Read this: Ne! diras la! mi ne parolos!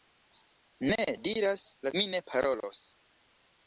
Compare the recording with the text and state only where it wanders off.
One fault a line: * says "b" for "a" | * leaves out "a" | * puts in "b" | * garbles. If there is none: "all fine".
all fine